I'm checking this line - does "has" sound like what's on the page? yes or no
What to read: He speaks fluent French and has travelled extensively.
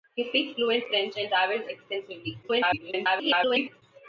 no